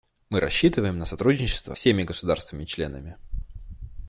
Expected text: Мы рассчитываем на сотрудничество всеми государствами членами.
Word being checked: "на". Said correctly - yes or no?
yes